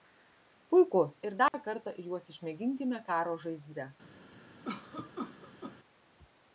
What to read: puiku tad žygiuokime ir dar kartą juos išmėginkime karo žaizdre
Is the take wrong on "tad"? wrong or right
wrong